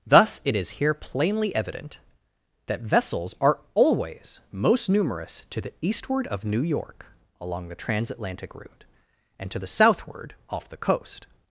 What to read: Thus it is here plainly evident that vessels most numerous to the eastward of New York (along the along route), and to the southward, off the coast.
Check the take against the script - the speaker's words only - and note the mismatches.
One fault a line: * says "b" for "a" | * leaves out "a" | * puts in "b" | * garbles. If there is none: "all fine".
* puts in "are always"
* says "transatlantic" for "along"